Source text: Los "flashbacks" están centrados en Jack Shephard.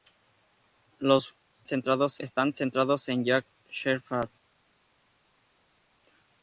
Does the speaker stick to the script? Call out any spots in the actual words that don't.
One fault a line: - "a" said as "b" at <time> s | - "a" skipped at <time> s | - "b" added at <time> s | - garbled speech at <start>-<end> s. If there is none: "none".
- "flashbacks" said as "centrados" at 1.6 s